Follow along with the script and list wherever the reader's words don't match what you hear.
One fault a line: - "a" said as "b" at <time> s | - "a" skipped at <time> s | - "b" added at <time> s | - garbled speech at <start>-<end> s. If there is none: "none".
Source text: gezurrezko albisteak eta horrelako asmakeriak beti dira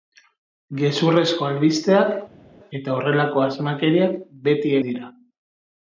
none